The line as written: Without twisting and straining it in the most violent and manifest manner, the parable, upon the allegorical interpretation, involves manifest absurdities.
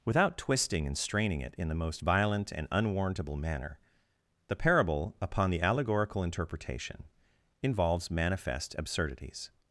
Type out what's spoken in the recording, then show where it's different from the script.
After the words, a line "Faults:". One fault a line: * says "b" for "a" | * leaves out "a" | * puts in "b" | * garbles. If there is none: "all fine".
Without twisting and straining it in the most violent and unwarrantable manner, the parable, upon the allegorical interpretation, involves manifest absurdities.
Faults:
* says "unwarrantable" for "manifest"